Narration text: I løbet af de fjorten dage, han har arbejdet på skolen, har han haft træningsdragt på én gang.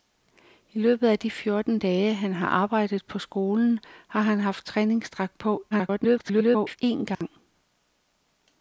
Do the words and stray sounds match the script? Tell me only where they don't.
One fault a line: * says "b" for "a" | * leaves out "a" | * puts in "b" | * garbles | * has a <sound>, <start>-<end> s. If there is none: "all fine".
* garbles
* has a dropout, 7.1-7.2 s